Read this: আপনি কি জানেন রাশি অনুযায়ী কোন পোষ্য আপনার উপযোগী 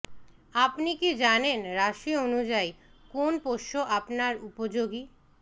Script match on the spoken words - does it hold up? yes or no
yes